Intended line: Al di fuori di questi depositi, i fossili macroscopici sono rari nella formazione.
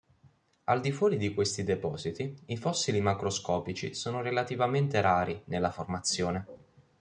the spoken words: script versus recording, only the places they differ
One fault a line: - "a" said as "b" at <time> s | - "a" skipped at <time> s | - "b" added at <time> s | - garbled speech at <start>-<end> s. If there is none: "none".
- "relativamente" added at 4.2 s